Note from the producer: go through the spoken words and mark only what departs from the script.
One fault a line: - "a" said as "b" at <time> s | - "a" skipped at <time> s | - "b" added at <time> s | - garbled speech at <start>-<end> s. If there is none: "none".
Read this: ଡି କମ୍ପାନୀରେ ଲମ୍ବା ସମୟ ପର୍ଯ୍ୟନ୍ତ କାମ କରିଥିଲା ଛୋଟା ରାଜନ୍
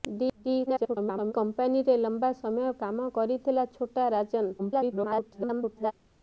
- garbled speech at 0.7-1.3 s
- "ପର୍ଯ୍ୟନ୍ତ" skipped at 2.7 s
- garbled speech at 4.6-5.9 s